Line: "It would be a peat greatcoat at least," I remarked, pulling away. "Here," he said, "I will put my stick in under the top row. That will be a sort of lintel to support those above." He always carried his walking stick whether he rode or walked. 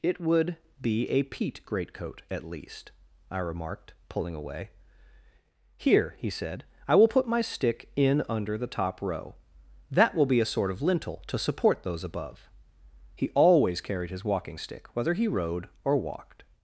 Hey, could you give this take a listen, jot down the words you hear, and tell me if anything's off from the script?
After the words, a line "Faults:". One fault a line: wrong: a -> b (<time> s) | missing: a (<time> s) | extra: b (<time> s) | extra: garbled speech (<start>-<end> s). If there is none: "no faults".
"It would be a peat greatcoat at least," I remarked, pulling away. "Here," he said, "I will put my stick in under the top row. That will be a sort of lintel to support those above." He always carried his walking stick whether he rode or walked.
Faults:
no faults